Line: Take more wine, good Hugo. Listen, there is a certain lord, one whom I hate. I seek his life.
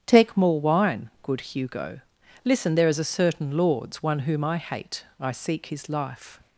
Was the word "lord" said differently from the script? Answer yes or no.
yes